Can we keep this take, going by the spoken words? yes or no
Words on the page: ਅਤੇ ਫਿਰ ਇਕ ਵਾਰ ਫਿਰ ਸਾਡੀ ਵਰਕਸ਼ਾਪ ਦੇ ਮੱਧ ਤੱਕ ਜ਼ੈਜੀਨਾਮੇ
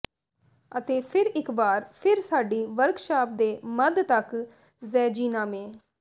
yes